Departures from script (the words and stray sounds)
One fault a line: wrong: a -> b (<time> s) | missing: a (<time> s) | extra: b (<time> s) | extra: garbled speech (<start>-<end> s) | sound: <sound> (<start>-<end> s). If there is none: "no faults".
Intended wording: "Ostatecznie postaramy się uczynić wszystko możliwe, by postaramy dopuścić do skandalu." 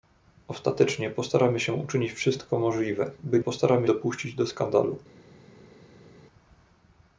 no faults